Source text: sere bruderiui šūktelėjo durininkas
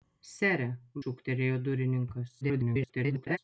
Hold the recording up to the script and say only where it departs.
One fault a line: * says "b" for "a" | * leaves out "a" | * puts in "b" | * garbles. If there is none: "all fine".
* leaves out "bruderiui"
* garbles